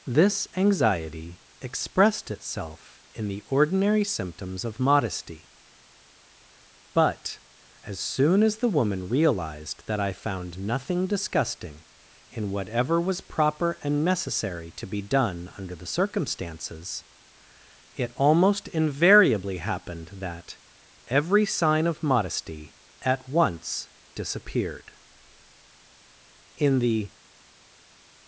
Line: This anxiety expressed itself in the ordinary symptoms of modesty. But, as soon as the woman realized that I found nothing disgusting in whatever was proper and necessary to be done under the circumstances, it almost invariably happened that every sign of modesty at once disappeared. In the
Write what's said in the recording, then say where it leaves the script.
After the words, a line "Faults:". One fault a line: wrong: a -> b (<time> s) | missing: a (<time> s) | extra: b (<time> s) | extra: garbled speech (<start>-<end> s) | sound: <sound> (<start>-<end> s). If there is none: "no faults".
This anxiety expressed itself in the ordinary symptoms of modesty. But, as soon as the woman realized that I found nothing disgusting in whatever was proper and necessary to be done under the circumstances, it almost invariably happened that every sign of modesty at once disappeared. In the
Faults:
no faults